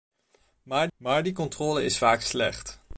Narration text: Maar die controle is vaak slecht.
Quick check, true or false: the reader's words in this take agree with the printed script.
false